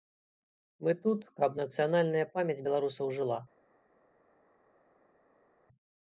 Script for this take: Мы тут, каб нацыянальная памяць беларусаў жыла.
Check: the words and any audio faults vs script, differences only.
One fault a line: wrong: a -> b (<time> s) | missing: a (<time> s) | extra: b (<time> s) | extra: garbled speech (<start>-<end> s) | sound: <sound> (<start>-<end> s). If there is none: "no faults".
no faults